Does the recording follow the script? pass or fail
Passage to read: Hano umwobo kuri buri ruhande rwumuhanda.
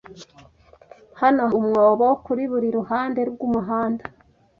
pass